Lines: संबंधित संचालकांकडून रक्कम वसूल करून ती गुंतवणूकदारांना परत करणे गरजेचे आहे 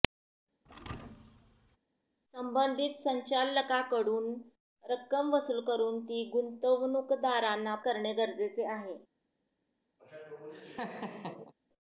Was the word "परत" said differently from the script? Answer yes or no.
yes